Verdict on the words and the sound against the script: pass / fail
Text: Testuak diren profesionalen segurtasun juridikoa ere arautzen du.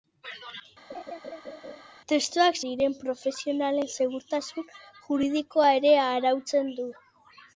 fail